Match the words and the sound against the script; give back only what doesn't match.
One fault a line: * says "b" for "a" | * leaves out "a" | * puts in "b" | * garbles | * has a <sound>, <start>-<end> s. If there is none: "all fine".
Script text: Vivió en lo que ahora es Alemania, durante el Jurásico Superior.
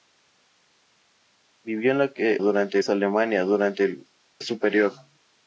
* says "durante" for "ahora"
* leaves out "Jurásico"